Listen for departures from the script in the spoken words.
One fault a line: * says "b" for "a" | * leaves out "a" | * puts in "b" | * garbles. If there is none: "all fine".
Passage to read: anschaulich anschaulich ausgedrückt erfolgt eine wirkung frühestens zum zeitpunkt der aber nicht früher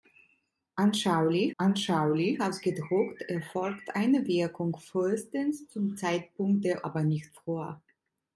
all fine